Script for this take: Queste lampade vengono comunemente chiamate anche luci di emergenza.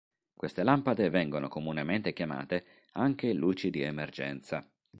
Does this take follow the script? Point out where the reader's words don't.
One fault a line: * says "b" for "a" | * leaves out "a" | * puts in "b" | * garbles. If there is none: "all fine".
all fine